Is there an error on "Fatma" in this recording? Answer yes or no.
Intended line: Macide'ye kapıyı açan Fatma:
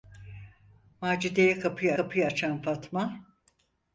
no